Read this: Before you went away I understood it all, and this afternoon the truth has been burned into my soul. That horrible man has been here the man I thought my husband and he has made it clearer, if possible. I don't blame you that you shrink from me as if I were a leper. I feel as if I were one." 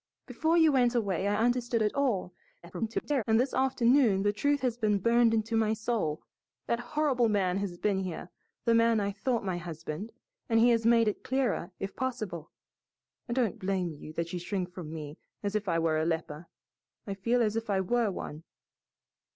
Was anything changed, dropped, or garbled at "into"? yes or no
no